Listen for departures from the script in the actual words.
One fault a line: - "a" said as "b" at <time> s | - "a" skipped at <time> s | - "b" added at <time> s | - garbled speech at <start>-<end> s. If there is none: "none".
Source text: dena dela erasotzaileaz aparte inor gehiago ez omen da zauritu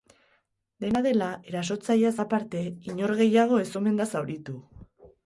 none